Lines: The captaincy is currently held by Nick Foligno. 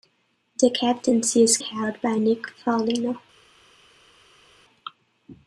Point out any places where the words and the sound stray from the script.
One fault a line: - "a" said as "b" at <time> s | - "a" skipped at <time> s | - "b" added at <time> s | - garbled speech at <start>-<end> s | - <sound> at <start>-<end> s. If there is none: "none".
- "currently" skipped at 1.6 s